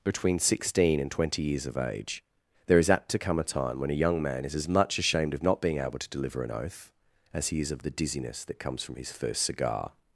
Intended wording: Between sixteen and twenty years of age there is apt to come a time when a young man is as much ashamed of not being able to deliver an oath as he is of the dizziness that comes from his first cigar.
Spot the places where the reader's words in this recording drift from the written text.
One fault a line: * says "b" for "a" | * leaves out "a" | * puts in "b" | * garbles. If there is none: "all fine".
all fine